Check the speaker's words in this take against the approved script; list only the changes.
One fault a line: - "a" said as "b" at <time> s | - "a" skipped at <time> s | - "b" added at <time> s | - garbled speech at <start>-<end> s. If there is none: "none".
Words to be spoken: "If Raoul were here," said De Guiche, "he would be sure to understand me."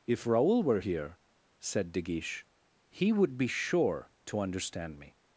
none